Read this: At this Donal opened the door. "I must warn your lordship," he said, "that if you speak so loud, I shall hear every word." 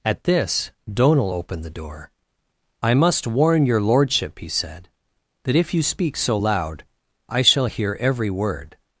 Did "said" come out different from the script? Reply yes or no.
no